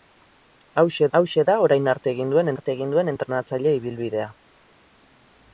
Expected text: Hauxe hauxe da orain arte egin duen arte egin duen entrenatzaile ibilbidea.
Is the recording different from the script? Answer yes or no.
no